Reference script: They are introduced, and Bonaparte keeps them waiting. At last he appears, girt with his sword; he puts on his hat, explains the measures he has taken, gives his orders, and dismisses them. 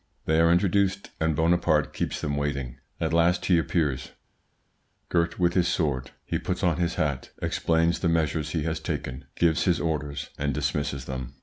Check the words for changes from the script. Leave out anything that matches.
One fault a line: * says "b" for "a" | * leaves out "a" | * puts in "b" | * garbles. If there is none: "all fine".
all fine